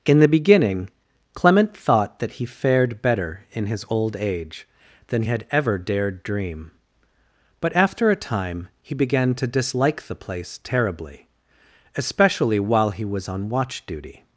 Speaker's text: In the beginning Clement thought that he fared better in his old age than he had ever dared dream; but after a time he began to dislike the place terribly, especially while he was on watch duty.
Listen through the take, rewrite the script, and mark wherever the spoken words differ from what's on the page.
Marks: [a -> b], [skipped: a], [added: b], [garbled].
In the beginning Clement thought that he fared better in his old age than [skipped: he] had ever dared dream; but after a time he began to dislike the place terribly, especially while he was on watch duty.